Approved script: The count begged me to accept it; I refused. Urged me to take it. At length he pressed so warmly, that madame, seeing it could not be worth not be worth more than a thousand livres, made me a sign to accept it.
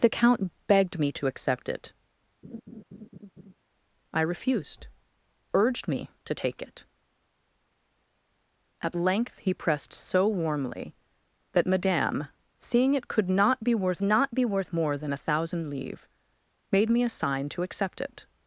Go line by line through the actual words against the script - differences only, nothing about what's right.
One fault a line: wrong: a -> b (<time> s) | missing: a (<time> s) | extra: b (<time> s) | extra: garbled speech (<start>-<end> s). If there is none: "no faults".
no faults